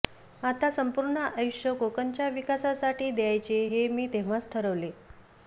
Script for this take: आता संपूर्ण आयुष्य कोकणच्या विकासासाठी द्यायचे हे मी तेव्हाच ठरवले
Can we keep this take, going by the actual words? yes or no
yes